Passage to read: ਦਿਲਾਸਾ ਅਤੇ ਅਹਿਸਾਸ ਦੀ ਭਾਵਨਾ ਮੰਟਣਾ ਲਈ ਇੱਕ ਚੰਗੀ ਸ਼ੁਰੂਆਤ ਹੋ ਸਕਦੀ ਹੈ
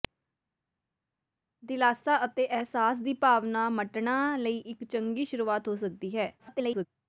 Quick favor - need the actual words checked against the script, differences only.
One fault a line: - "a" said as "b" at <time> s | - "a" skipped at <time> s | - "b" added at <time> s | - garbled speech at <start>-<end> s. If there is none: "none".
- garbled speech at 6.4-6.9 s